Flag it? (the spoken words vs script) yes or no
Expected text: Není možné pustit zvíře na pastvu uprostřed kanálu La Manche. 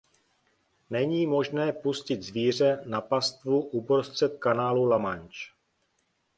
no